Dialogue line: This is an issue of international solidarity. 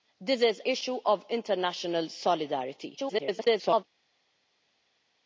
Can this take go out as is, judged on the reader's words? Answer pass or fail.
fail